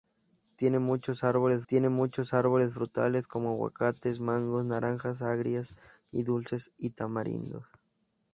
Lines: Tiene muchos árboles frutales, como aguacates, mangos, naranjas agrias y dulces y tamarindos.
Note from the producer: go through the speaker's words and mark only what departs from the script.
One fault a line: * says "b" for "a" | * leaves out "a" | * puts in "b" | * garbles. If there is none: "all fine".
* puts in "tiene muchos árboles"